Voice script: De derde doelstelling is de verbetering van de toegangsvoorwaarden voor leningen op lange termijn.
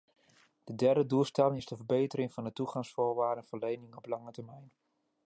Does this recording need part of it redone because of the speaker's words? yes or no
no